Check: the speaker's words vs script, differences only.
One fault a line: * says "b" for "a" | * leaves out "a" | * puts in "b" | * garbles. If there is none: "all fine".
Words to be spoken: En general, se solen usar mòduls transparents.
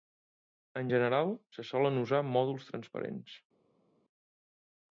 all fine